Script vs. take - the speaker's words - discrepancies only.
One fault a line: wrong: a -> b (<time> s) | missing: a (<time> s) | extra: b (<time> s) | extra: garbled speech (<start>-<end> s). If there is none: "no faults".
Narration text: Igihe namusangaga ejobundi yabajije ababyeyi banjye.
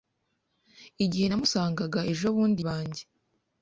missing: yabajije ababyeyi (2.6 s)